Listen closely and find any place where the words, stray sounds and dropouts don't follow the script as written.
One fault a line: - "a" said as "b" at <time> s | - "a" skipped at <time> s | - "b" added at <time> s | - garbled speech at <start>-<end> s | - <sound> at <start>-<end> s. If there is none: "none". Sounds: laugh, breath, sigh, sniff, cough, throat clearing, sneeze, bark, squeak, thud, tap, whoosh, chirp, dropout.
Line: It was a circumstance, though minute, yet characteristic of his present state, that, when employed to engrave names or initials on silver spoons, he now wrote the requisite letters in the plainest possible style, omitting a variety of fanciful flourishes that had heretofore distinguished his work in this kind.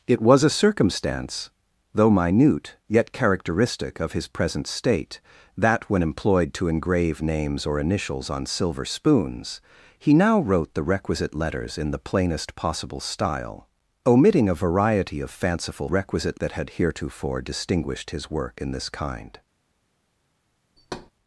- "flourishes" said as "requisite" at 15.9 s
- thud at 20.8-21.1 s